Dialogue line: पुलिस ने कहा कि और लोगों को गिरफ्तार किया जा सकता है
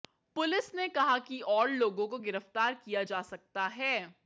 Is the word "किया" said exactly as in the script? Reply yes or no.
yes